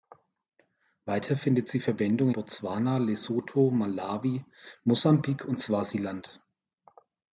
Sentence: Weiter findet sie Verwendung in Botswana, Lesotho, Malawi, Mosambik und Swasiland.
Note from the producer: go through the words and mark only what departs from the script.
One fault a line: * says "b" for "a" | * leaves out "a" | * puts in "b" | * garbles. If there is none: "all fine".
* leaves out "in"